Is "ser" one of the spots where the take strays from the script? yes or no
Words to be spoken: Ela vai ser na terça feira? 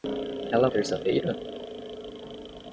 yes